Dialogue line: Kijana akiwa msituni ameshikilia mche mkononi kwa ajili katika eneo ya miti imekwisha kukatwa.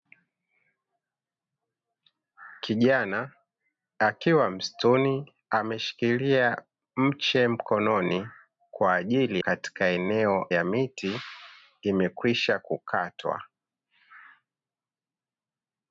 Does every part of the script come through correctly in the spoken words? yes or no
yes